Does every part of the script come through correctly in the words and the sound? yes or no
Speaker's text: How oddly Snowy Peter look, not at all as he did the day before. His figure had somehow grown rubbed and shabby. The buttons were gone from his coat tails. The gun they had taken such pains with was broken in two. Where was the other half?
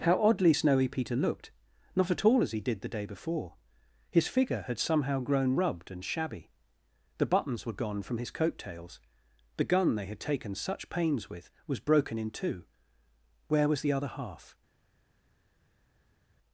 no